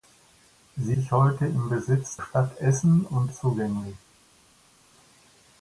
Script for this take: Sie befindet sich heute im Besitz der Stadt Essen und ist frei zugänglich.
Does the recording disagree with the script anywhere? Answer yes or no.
yes